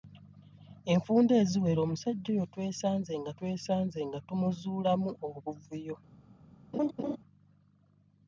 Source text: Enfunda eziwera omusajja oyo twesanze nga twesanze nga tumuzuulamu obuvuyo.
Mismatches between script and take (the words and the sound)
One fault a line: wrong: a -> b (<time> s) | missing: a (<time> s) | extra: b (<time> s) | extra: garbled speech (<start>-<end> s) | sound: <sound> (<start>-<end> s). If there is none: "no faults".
sound: laugh (6.7-7.2 s)